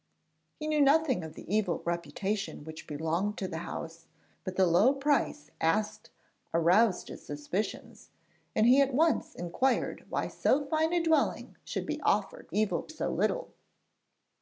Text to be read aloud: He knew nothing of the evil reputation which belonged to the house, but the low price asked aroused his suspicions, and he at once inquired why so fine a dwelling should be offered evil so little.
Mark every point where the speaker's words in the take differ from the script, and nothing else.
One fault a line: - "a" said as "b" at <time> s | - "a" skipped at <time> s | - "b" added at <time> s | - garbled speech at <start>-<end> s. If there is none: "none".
none